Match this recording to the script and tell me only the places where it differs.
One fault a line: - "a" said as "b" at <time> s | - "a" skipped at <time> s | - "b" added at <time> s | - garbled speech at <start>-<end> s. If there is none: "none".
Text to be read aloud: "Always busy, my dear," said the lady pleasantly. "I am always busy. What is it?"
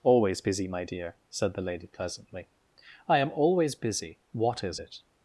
none